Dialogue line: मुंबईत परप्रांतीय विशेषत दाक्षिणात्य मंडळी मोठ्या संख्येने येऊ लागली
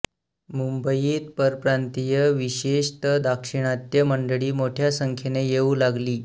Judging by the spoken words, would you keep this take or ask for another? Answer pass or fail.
pass